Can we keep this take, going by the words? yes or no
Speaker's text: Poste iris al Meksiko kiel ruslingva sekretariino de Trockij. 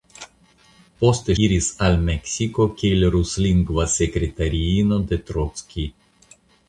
yes